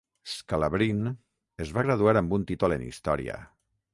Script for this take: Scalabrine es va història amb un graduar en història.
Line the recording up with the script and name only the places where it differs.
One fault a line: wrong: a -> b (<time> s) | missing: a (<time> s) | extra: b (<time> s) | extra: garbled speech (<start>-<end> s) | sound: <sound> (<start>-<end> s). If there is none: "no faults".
wrong: història -> graduar (1.9 s)
wrong: graduar -> títol (2.5 s)